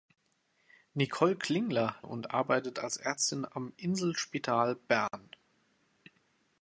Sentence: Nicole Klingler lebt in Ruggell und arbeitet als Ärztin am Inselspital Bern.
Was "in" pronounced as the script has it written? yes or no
no